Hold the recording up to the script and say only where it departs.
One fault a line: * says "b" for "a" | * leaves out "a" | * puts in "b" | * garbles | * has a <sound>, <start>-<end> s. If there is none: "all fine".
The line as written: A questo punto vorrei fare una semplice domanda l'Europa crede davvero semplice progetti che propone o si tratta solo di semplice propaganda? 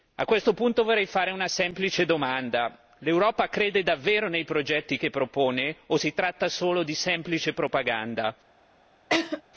* says "nei" for "semplice"
* has a laugh, 9.1-9.4 s